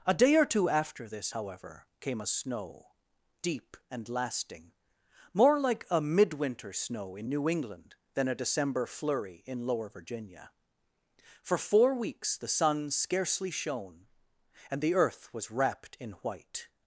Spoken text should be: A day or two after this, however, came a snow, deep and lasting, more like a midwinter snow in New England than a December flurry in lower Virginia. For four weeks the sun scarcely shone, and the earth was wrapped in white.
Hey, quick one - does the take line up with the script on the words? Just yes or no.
yes